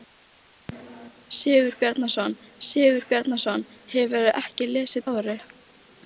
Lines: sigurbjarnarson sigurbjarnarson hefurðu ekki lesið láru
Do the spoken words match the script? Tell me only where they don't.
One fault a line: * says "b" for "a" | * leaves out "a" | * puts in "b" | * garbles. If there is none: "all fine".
all fine